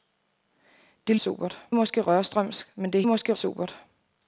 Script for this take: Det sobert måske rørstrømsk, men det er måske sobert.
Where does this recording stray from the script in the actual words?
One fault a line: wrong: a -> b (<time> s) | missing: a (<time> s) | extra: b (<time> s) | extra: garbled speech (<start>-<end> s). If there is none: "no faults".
no faults